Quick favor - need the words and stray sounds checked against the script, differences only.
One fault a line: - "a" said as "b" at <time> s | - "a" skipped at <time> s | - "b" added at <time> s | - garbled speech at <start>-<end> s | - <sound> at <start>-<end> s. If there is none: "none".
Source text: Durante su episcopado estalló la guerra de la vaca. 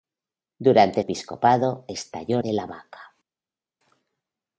- "su" skipped at 1.0 s
- "la guerra" skipped at 2.4 s